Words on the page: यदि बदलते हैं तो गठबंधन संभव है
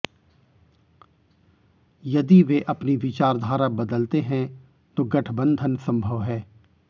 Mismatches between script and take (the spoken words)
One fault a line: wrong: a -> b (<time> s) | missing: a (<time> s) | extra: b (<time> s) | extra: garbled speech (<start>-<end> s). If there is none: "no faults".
extra: वे अपनी विचारधारा (2.4 s)